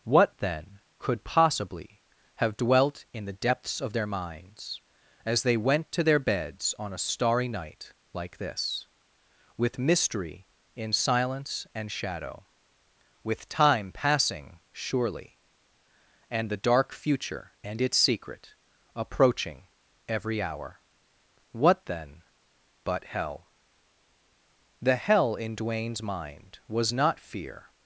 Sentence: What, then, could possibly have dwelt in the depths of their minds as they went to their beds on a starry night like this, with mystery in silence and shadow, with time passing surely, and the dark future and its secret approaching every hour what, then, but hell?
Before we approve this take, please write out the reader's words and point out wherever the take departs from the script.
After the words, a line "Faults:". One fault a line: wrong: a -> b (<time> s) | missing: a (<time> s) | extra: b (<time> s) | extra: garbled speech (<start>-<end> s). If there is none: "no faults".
What, then, could possibly have dwelt in the depths of their minds as they went to their beds on a starry night like this, with mystery in silence and shadow, with time passing surely, and the dark future and its secret approaching every hour what, then, but hell? The hell in Duane's mind was not fear
Faults:
extra: The hell in Duane's mind was not fear (24.8 s)